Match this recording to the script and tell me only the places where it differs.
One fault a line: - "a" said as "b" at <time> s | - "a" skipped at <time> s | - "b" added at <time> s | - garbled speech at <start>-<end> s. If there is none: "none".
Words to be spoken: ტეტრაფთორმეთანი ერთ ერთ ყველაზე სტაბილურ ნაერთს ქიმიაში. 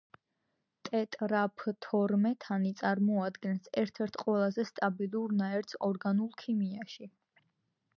- "წარმოადგენს" added at 2.8 s
- "ორგანულ" added at 5.9 s